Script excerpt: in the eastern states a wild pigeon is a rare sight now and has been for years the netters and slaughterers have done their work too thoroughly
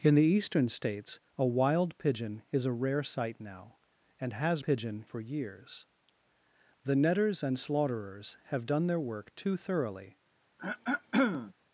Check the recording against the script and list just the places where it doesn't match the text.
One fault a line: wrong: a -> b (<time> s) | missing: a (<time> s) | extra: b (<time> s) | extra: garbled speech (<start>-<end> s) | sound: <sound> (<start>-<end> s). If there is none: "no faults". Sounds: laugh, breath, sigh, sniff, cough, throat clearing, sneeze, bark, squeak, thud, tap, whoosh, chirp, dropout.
wrong: been -> pigeon (4.6 s)
sound: throat clearing (10.6-11.5 s)